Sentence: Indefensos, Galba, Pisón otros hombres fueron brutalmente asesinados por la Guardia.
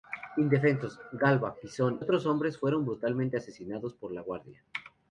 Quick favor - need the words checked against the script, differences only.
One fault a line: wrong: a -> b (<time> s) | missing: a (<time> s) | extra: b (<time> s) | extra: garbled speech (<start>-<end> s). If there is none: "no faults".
no faults